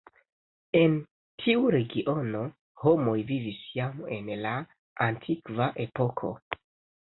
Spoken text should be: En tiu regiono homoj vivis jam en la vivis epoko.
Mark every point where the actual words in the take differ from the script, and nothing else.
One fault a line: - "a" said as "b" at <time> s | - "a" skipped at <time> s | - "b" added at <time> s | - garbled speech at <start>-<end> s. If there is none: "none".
- "vivis" said as "antikva" at 5.1 s